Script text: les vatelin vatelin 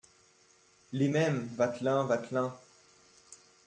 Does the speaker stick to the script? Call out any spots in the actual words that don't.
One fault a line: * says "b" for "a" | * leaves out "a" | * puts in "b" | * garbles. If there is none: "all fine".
* puts in "mêmes"